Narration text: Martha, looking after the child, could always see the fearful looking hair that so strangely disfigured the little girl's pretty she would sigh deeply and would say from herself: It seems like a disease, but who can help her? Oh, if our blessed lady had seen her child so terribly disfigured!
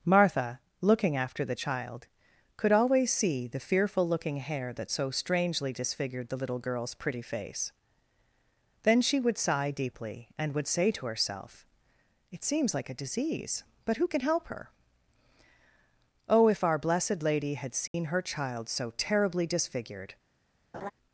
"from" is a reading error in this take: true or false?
true